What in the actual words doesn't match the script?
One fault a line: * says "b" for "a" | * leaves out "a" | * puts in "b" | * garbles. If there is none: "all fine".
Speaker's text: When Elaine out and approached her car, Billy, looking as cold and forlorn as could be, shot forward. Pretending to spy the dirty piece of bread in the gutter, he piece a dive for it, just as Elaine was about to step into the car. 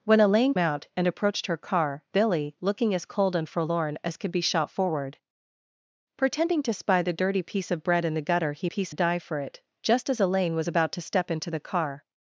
all fine